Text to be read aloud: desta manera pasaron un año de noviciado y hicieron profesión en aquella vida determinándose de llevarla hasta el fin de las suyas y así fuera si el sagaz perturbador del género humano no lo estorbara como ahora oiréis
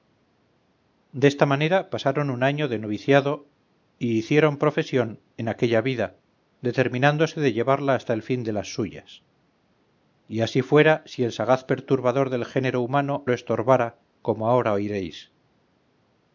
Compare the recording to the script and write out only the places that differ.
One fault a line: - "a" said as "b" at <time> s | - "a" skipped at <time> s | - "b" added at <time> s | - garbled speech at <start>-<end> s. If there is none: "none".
- "no" skipped at 13.3 s